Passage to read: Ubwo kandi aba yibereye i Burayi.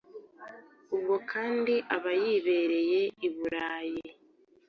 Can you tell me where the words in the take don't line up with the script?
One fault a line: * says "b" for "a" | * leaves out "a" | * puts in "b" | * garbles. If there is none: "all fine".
all fine